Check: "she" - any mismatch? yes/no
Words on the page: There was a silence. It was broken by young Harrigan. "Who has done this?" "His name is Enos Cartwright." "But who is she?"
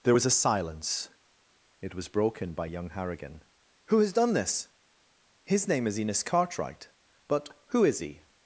yes